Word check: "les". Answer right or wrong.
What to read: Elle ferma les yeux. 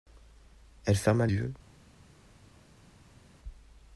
wrong